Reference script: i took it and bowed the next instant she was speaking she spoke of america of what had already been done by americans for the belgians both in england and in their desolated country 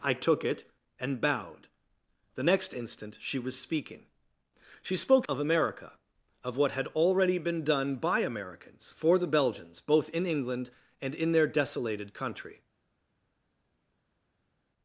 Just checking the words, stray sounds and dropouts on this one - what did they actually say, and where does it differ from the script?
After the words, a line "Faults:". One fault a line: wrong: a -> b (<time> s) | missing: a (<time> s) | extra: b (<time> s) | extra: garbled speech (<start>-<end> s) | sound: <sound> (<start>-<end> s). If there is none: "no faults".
i took it and bowed the next instant she was speaking she spoke of america of what had already been done by americans for the belgians both in england and in their desolated country
Faults:
no faults